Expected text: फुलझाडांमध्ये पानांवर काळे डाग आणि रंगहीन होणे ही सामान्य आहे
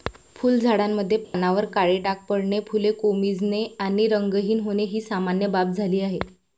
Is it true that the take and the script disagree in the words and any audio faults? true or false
true